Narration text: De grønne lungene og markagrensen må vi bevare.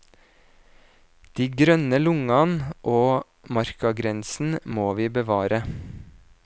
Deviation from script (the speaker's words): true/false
false